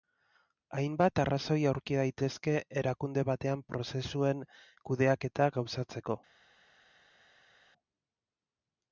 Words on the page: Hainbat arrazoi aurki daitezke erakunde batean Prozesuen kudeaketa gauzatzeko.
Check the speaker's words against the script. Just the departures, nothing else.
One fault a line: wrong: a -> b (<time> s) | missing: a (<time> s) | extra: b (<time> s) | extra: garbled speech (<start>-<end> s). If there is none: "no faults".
no faults